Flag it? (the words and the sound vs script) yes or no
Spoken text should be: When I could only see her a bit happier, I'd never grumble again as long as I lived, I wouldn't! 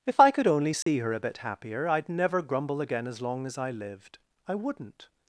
yes